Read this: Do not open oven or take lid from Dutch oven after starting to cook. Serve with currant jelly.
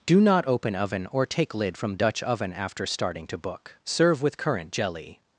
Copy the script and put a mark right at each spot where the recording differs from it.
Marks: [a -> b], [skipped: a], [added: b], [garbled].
Do not open oven or take lid from Dutch oven after starting to [cook. -> book] Serve with currant jelly.